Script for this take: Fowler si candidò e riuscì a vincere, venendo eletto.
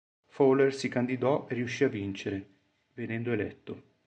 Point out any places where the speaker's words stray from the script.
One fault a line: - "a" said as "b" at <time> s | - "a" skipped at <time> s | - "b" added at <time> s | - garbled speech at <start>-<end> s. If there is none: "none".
none